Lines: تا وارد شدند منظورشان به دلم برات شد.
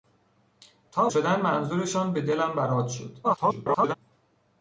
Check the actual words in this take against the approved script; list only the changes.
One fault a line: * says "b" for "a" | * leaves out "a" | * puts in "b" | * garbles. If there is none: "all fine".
* leaves out "وارد"
* garbles